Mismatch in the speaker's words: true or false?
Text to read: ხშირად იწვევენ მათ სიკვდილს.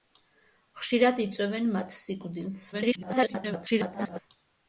true